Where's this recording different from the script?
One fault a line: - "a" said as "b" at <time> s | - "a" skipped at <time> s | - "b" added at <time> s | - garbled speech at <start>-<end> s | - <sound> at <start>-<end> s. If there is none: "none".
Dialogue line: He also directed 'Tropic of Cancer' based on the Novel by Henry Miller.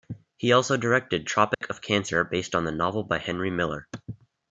- dropout at 1.5-1.6 s